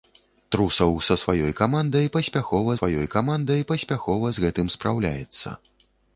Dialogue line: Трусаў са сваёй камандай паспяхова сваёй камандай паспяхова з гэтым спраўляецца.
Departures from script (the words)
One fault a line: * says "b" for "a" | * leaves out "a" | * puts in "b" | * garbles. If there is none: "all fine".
all fine